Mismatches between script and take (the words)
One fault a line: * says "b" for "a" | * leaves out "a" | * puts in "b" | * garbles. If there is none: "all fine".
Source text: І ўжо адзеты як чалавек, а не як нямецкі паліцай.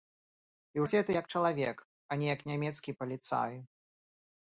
* leaves out "ўжо"